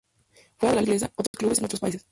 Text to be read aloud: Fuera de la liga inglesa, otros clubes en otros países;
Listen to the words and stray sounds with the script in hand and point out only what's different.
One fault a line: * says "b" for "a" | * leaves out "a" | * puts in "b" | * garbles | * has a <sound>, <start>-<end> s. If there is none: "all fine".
* leaves out "liga"
* has a dropout, 1.3-1.3 s